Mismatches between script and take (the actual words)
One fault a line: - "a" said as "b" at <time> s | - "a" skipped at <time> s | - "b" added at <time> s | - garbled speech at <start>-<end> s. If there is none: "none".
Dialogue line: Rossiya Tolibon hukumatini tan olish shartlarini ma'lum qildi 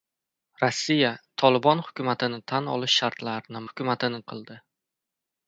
- "ma'lum" said as "hukumatini" at 3.7 s